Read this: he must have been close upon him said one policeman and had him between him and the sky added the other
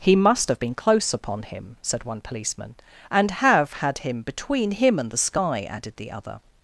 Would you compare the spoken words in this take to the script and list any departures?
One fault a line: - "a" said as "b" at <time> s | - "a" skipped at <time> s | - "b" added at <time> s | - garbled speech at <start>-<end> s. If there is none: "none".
- "have" added at 3.3 s